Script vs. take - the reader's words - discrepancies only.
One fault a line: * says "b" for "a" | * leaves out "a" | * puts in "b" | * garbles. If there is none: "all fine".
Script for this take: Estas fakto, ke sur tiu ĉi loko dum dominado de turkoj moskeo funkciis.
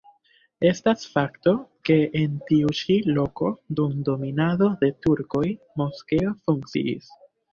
* says "en" for "sur"